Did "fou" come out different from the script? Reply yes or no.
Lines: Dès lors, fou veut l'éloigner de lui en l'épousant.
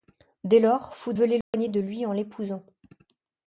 no